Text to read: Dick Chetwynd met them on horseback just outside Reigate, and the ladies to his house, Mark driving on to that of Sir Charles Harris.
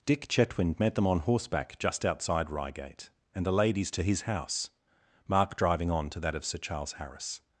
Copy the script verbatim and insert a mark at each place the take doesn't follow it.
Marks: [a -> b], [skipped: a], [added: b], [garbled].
Dick Chetwynd met them on horseback just outside Reigate, and the ladies to his house, Mark driving on to that of Sir Charles Harris.